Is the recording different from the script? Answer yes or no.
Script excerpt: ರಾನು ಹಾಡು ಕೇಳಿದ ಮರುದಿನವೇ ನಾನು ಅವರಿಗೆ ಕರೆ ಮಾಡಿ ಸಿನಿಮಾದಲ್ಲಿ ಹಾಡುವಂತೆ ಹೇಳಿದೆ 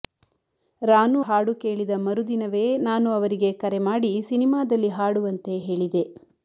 no